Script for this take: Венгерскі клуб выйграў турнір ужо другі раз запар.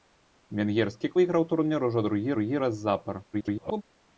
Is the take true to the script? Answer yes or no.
no